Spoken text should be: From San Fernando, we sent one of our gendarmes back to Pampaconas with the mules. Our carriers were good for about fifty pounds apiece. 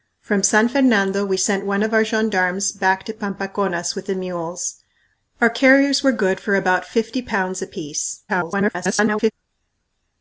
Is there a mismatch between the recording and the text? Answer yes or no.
yes